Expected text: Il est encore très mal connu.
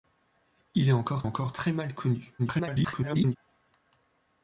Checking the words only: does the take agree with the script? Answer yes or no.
no